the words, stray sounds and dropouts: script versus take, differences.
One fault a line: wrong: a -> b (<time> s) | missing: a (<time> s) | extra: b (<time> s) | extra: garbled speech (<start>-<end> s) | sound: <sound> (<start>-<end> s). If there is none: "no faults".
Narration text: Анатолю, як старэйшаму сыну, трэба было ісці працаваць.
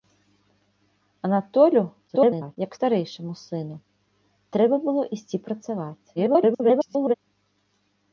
extra: garbled speech (2.1-2.6 s)
extra: garbled speech (6.1-7.1 s)